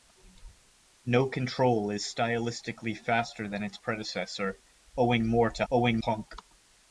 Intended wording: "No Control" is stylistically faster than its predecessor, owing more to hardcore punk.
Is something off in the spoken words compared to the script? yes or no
yes